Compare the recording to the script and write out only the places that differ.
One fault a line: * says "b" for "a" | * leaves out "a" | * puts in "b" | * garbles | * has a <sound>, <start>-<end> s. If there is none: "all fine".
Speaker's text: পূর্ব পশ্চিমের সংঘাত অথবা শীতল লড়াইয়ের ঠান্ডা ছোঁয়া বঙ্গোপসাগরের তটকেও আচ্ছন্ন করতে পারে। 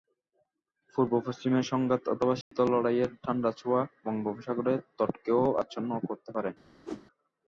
* has a dropout, 2.4-2.5 s
* has a whoosh, 6.8-7.1 s